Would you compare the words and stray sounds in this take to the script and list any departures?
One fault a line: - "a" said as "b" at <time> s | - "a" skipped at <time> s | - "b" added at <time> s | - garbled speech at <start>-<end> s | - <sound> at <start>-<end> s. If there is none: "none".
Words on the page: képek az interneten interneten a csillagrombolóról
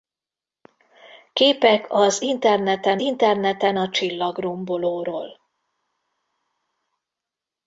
none